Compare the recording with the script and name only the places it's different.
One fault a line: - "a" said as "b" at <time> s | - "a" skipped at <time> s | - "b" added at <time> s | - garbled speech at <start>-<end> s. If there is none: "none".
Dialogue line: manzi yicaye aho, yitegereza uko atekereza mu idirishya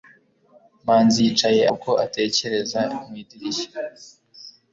- "aho yitegereza" skipped at 1.6 s